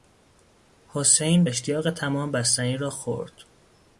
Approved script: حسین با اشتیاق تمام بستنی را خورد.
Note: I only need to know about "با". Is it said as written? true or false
false